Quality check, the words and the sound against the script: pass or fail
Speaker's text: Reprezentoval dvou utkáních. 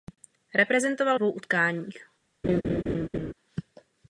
fail